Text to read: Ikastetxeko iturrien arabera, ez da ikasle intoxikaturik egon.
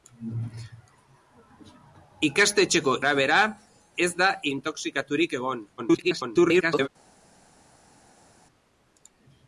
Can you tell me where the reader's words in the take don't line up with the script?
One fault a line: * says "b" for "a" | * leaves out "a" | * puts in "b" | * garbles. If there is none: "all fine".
* leaves out "iturrien"
* leaves out "ikasle"
* garbles